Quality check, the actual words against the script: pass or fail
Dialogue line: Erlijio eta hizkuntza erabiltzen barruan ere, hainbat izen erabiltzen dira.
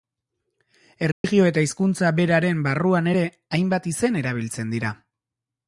fail